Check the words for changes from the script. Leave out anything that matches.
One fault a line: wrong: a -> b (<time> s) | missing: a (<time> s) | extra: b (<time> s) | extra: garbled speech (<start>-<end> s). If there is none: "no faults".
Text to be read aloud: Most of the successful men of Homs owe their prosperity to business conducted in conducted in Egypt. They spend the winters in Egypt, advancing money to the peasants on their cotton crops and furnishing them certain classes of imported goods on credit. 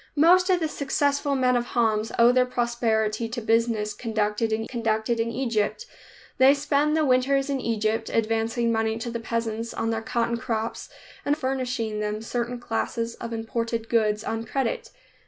no faults